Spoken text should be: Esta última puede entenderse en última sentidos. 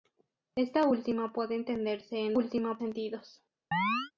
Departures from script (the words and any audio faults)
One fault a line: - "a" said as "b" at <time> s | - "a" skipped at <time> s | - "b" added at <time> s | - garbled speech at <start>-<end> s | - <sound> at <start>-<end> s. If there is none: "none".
- chirp at 3.7-4.1 s